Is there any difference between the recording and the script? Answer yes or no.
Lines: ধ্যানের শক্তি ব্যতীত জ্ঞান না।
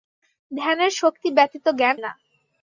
no